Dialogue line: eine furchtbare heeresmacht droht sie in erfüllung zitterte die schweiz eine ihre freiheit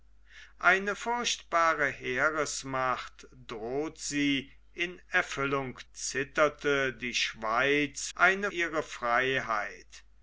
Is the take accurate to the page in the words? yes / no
yes